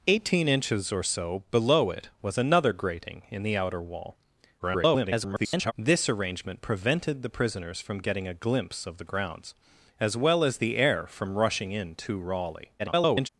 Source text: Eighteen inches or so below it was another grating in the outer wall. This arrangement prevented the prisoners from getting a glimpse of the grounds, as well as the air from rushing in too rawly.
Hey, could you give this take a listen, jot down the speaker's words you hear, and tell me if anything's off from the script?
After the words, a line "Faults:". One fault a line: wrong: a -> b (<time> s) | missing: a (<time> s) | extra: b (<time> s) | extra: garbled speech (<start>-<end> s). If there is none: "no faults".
Eighteen inches or so below it was another grating in the outer wall. [garbled] This arrangement prevented the prisoners from getting a glimpse of the grounds, as well as the air from rushing in too rawly. [garbled]
Faults:
extra: garbled speech (4.6-5.7 s)
extra: garbled speech (12.8-13.3 s)